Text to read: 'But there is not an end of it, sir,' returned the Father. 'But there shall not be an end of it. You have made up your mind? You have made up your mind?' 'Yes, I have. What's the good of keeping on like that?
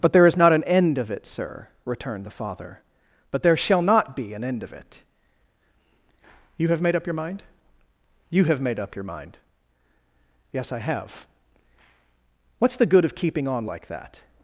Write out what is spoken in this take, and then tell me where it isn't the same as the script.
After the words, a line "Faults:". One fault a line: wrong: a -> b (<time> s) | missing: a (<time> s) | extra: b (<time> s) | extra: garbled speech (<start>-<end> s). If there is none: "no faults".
'But there is not an end of it, sir,' returned the Father. 'But there shall not be an end of it. You have made up your mind? You have made up your mind?' 'Yes, I have. What's the good of keeping on like that?
Faults:
no faults